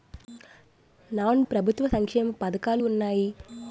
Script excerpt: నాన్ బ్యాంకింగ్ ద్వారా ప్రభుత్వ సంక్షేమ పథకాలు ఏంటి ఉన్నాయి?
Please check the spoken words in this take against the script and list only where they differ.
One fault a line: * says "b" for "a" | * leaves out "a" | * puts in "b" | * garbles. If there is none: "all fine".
* leaves out "బ్యాంకింగ్ ద్వారా"
* leaves out "ఏంటి"